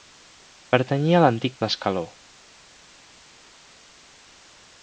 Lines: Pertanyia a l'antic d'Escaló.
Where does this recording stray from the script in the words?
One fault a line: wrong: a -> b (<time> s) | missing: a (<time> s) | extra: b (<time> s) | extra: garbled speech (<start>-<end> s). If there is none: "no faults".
no faults